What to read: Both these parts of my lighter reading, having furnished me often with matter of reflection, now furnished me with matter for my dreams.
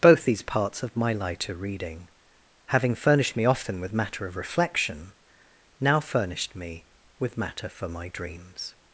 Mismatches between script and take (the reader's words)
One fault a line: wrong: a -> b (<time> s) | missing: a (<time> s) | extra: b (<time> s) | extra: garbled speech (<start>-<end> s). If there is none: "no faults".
no faults